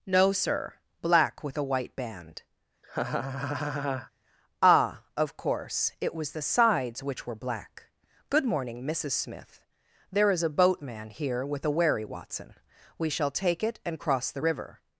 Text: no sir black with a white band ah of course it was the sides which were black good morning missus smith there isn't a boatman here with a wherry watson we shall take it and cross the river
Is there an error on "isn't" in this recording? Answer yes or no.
yes